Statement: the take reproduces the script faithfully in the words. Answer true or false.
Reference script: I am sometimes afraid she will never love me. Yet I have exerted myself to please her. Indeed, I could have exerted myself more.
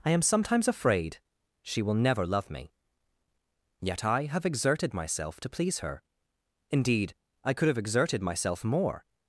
true